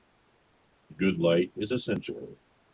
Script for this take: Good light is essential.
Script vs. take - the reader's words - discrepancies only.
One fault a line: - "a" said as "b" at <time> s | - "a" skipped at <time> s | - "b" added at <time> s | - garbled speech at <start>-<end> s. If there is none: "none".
none